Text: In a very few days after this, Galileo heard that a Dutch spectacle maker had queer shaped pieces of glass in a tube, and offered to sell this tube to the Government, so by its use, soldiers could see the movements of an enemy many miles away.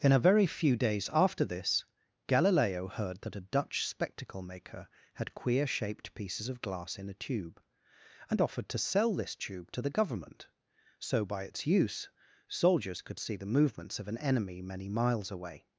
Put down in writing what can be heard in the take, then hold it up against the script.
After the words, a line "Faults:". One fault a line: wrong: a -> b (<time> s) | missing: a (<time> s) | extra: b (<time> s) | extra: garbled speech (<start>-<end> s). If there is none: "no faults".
In a very few days after this, Galileo heard that a Dutch spectacle maker had queer shaped pieces of glass in a tube, and offered to sell this tube to the Government, so by its use, soldiers could see the movements of an enemy many miles away.
Faults:
no faults